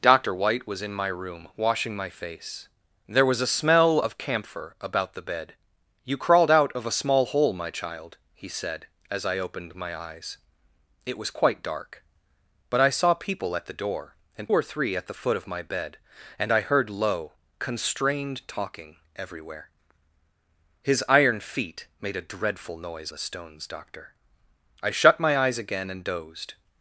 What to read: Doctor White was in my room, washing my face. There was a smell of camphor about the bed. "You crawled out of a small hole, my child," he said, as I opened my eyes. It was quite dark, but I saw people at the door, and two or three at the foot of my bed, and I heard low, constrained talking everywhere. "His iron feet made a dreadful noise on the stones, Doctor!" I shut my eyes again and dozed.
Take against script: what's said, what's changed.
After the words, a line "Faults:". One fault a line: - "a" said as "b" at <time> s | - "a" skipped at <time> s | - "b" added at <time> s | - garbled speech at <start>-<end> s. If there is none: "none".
Doctor White was in my room, washing my face. There was a smell of camphor about the bed. "You crawled out of a small hole, my child," he said, as I opened my eyes. It was quite dark, but I saw people at the door, and or three at the foot of my bed, and I heard low, constrained talking everywhere. "His iron feet made a dreadful noise the stones, Doctor!" I shut my eyes again and dozed.
Faults:
- "two" skipped at 14.5 s
- "on" skipped at 23.1 s